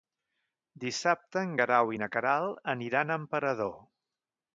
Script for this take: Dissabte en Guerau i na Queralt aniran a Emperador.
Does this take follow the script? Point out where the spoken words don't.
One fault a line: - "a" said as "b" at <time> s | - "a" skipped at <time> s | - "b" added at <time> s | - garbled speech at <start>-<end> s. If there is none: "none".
none